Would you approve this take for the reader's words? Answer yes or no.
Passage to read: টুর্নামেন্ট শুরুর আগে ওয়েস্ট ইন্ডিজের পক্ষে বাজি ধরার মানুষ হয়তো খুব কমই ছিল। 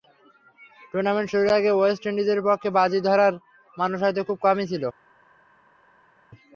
yes